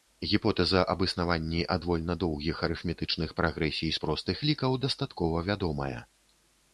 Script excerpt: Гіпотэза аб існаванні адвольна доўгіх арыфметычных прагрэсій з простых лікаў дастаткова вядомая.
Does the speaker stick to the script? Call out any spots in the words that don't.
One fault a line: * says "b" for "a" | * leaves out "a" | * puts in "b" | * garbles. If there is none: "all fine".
all fine